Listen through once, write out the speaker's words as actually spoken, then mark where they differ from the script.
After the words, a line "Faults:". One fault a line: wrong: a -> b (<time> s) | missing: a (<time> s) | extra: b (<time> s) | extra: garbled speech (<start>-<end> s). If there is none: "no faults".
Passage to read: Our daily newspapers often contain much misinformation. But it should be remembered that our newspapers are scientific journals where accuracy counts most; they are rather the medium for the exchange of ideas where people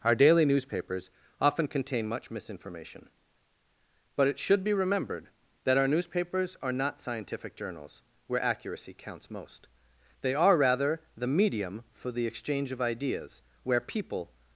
Our daily newspapers often contain much misinformation. But it should be remembered that our newspapers are not scientific journals where accuracy counts most; they are rather the medium for the exchange of ideas where people
Faults:
extra: not (6.7 s)